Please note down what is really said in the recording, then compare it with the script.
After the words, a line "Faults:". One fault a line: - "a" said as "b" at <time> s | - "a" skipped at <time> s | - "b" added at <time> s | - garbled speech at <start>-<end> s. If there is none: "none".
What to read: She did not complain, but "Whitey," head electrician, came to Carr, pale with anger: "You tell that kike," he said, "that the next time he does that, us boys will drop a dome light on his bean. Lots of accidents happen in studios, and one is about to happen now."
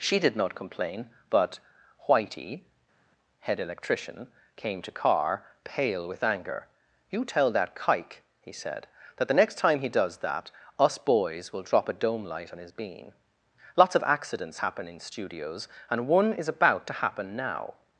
She did not complain, but "Whitey," head electrician, came to Carr, pale with anger: "You tell that kike," he said, "that the next time he does that, us boys will drop a dome light on his bean. Lots of accidents happen in studios, and one is about to happen now."
Faults:
none